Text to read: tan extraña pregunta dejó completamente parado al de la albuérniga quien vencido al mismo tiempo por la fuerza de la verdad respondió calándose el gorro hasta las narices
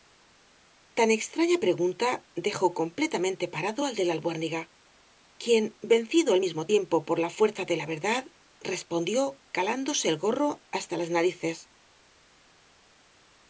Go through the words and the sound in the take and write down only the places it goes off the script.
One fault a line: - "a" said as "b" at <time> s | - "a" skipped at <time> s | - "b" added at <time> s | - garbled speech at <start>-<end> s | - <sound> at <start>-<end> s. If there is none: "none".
none